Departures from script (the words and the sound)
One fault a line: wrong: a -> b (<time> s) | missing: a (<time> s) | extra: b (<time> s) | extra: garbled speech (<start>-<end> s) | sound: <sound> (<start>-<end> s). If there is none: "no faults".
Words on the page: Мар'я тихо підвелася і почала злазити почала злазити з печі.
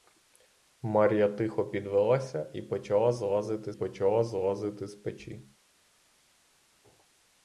no faults